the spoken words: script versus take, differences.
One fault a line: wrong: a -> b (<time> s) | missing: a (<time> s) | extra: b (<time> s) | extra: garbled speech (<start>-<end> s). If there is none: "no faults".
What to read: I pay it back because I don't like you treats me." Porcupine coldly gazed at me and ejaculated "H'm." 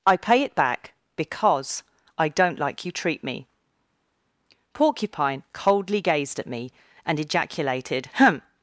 wrong: treats -> treat (2.9 s)